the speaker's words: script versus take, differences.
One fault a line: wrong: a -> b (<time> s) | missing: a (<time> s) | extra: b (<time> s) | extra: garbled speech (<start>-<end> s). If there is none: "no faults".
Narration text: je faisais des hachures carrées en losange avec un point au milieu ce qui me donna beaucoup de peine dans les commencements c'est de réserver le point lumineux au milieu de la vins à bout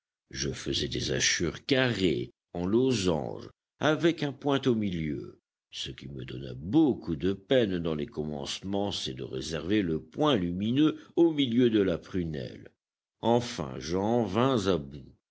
extra: prunelle enfin j'en (12.0 s)